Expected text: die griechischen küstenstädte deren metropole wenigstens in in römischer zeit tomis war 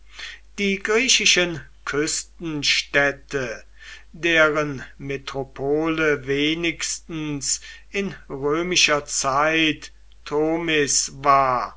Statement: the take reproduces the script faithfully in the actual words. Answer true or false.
false